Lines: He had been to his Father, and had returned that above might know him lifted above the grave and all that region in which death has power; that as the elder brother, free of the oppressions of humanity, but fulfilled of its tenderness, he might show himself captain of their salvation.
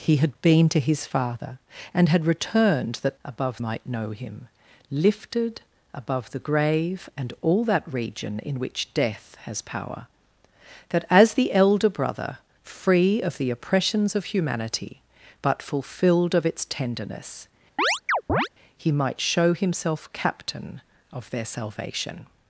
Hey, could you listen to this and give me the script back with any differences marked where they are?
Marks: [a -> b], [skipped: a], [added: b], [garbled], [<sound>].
He had been to his Father, and had returned that above might know him lifted above the grave and all that region in which death has power; that as the elder brother, free of the oppressions of humanity, but fulfilled of its tenderness, [chirp] he might show himself captain of their salvation.